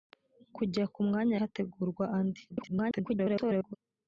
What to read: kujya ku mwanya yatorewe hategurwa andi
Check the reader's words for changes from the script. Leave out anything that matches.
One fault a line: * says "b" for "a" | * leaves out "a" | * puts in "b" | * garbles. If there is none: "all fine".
* leaves out "yatorewe"
* garbles